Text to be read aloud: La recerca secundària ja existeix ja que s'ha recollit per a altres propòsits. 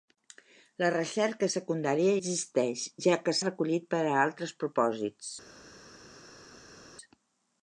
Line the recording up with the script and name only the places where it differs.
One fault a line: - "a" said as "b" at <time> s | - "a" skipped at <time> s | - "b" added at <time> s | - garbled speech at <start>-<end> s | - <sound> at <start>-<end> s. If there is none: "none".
- "ja" skipped at 2.1 s
- "s'ha" skipped at 3.4 s